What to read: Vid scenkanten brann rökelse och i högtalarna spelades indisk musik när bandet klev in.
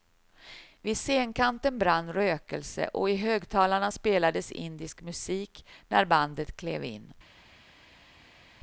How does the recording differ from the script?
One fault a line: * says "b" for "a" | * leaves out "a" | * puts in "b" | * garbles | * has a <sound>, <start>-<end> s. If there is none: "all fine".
all fine